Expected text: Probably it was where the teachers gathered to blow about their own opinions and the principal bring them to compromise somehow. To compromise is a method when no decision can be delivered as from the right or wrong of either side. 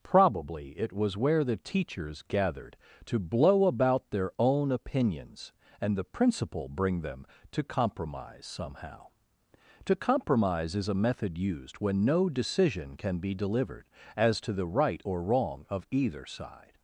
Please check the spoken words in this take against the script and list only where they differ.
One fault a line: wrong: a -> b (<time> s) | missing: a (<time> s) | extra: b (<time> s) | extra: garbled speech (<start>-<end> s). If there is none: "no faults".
extra: used (11.4 s)
wrong: from -> to (14.4 s)